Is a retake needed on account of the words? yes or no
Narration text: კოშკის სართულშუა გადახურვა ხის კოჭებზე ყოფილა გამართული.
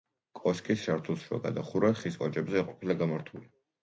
no